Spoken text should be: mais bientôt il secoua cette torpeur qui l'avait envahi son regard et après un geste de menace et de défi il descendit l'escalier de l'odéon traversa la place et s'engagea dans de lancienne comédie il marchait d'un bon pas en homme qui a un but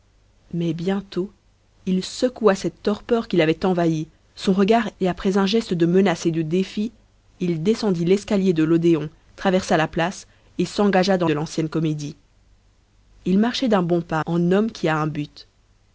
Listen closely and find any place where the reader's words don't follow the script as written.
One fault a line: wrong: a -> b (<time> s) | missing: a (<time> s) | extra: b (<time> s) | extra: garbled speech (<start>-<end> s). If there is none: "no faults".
no faults